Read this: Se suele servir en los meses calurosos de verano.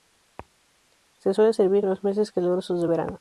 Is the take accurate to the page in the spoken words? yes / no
yes